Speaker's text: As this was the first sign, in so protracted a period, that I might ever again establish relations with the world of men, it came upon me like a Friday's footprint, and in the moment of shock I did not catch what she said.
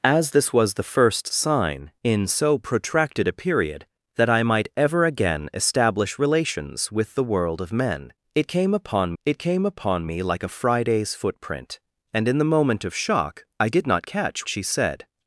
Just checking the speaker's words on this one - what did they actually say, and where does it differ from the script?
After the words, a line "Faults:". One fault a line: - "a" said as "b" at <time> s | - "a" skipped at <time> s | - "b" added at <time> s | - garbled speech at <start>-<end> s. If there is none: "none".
As this was the first sign, in so protracted a period, that I might ever again establish relations with the world of men, it came upon it came upon me like a Friday's footprint, and in the moment of shock I did not catch she said.
Faults:
- "it came upon" added at 9.2 s
- "what" skipped at 14.5 s